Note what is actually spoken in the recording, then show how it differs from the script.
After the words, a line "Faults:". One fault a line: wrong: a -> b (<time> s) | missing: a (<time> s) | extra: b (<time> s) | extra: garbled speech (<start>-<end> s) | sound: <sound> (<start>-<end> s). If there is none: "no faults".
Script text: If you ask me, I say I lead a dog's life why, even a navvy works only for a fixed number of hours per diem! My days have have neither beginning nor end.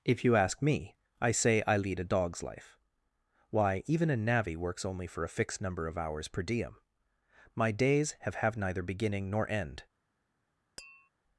If you ask me, I say I lead a dog's life why, even a navvy works only for a fixed number of hours per diem! My days have have neither beginning nor end.
Faults:
sound: tap (10.8-11.1 s)